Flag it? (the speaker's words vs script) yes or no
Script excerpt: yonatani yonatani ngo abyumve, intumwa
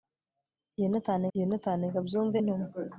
no